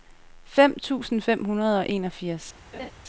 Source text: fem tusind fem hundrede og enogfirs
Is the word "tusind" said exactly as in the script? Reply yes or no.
yes